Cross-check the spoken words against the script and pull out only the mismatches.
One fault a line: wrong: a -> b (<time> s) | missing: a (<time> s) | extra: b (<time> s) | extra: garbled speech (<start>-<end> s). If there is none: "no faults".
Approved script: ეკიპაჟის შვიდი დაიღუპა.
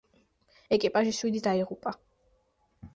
no faults